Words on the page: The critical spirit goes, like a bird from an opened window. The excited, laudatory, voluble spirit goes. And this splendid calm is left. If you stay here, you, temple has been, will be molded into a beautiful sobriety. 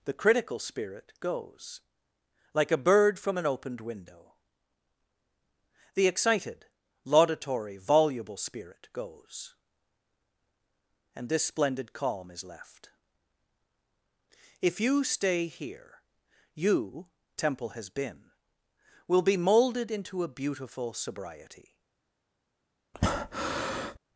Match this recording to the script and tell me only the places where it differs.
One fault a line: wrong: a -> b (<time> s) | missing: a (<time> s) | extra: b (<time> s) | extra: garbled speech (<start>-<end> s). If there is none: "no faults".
no faults